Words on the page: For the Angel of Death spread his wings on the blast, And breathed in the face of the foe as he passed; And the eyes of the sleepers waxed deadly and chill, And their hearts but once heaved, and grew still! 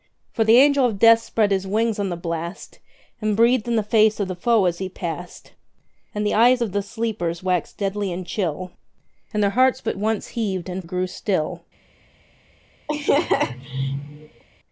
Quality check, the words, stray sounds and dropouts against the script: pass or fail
fail